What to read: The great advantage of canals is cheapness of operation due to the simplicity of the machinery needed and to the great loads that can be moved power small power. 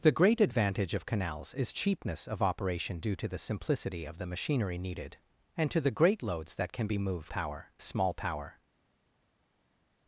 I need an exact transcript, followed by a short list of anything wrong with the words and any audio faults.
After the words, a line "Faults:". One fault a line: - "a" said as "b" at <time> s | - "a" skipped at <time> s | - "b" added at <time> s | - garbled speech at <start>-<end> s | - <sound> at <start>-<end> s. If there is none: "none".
The great advantage of canals is cheapness of operation due to the simplicity of the machinery needed and to the great loads that can be moved power small power.
Faults:
none